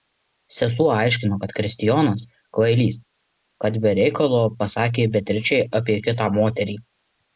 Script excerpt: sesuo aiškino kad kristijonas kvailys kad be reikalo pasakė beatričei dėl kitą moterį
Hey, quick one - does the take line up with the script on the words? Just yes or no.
no